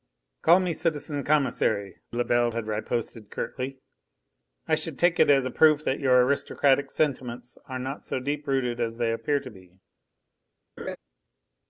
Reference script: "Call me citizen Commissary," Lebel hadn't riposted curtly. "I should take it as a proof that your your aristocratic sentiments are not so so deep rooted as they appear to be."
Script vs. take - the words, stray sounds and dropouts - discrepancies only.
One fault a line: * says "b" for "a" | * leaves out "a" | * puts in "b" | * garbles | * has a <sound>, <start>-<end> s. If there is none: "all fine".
* says "had" for "hadn't"
* leaves out "your"
* leaves out "so"
* has a laugh, 10.8-11.0 s